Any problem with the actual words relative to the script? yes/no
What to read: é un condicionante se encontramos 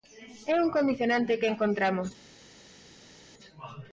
yes